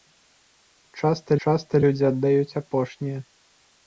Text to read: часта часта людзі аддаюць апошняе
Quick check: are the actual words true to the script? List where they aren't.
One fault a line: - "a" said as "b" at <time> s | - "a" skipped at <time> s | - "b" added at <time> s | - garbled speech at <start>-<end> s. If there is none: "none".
none